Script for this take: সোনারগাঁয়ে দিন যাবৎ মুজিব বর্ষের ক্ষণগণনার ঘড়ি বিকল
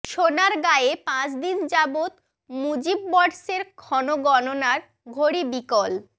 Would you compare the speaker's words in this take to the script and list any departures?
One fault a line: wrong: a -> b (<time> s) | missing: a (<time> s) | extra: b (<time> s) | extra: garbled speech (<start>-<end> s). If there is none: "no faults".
extra: পাঁচ (1.1 s)